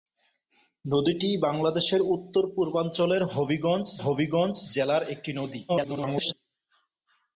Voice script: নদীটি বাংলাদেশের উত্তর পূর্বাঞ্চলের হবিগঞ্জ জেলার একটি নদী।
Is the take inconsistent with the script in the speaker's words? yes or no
yes